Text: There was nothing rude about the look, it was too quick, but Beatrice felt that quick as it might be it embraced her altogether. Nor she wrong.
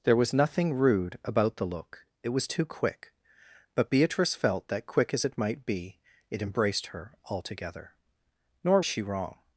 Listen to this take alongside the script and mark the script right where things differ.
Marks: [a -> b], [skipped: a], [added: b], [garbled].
There was nothing rude about the look, it was too quick, but Beatrice felt that quick as it might be it embraced her altogether. Nor she wrong.